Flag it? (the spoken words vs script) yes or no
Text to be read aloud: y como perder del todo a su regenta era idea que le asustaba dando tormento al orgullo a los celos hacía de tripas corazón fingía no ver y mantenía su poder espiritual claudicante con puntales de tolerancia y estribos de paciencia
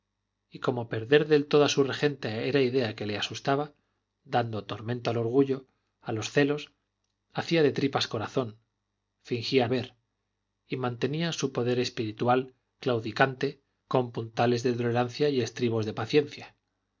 yes